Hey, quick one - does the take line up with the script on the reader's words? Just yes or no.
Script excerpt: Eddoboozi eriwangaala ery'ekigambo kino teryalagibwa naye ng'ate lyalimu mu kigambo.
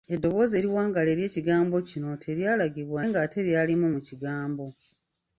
no